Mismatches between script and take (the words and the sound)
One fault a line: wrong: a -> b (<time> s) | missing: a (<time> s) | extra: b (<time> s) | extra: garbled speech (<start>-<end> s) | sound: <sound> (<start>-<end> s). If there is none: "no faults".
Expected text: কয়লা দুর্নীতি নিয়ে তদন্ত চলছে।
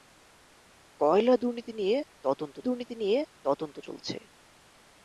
extra: দুর্নীতি নিয়ে তদন্ত (2.6 s)